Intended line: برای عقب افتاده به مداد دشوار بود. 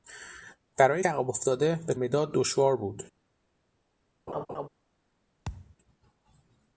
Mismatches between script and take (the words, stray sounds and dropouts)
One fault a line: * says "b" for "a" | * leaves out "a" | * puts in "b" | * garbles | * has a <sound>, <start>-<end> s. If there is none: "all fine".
* has a laugh, 4.3-4.7 s
* has a thud, 5.5-5.8 s